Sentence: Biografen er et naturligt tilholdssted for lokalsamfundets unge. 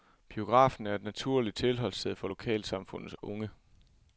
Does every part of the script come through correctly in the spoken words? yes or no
yes